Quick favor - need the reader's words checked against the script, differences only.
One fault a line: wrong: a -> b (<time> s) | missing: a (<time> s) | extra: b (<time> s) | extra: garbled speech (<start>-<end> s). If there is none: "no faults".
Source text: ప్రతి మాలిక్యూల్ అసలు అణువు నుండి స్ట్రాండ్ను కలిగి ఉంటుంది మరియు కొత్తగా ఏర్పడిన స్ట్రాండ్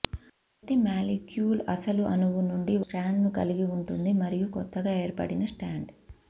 no faults